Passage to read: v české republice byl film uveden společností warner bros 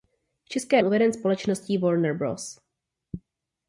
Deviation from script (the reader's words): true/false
true